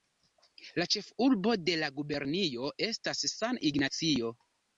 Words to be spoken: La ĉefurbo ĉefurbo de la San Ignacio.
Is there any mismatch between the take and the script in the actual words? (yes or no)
yes